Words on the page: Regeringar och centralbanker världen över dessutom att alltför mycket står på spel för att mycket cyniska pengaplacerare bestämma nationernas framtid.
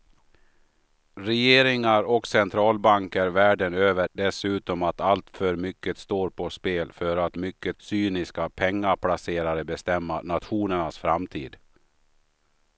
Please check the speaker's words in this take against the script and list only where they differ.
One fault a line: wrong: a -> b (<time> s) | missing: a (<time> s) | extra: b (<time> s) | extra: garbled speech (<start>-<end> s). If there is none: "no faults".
no faults